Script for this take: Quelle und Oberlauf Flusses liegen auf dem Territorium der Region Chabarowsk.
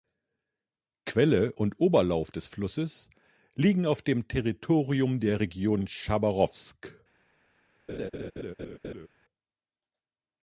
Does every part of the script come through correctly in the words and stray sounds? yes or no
no